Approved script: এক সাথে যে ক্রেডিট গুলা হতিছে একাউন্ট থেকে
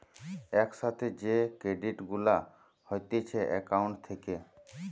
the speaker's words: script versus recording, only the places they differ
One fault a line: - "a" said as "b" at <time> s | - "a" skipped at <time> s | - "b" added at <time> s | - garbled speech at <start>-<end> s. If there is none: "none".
none